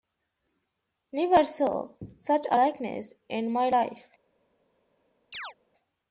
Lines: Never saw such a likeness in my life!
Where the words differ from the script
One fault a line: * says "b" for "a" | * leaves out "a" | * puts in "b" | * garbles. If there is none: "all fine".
all fine